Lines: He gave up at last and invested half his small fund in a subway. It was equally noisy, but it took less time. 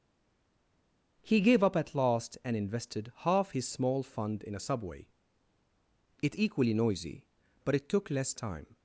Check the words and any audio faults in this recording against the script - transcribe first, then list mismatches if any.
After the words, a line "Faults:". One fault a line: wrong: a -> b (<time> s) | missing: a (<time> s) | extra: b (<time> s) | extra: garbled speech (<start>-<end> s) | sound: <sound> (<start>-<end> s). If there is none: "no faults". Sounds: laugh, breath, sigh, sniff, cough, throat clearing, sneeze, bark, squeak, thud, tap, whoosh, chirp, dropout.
He gave up at last and invested half his small fund in a subway. It equally noisy, but it took less time.
Faults:
missing: was (6.4 s)